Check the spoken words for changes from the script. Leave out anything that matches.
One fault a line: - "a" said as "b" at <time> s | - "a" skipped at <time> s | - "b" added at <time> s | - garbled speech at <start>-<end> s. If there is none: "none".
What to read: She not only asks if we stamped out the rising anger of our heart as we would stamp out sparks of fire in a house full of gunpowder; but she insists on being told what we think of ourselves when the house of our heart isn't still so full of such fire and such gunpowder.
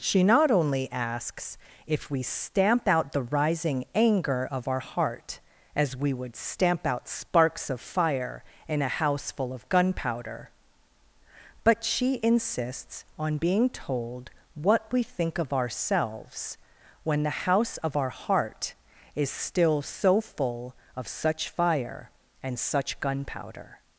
- "stamped" said as "stamp" at 2.2 s
- "isn't" said as "is" at 19.2 s